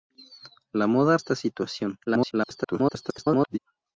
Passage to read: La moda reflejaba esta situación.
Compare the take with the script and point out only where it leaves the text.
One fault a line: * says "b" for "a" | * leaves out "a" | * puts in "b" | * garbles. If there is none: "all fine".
* leaves out "reflejaba"
* garbles